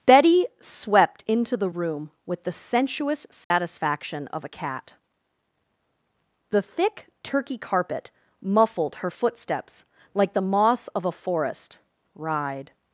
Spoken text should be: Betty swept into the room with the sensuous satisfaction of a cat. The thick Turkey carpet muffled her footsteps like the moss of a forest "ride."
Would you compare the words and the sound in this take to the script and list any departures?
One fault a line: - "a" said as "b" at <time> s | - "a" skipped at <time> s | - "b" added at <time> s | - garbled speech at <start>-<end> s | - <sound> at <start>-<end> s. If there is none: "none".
- dropout at 3.4-3.5 s